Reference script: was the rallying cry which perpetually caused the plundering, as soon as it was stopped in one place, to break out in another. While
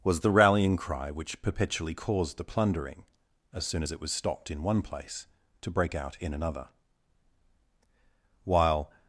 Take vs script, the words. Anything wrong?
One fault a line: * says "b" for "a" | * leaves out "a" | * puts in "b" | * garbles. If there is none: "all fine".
all fine